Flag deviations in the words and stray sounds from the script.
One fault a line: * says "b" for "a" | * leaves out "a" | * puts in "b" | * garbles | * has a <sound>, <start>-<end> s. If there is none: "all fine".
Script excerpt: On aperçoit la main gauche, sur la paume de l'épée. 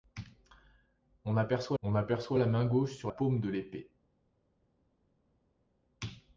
* puts in "on aperçoit"
* leaves out "la"